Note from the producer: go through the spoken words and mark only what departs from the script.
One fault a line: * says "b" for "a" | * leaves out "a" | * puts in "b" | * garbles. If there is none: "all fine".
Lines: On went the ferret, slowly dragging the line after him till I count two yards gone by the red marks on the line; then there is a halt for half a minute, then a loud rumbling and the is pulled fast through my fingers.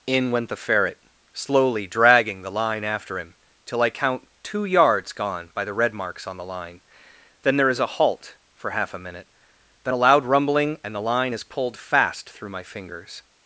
* says "In" for "On"
* puts in "line"